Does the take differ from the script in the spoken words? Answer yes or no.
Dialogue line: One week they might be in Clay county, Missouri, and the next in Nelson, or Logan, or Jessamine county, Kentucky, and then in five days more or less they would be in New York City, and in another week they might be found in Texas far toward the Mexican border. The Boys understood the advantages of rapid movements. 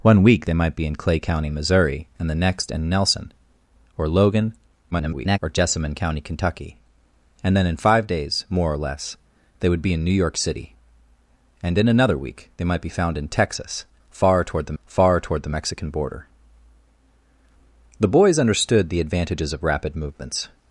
yes